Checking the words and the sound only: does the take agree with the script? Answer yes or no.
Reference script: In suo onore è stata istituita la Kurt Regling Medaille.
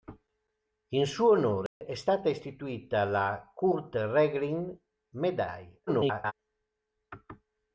no